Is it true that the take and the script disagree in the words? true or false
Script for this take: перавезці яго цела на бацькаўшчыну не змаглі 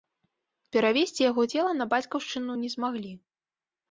false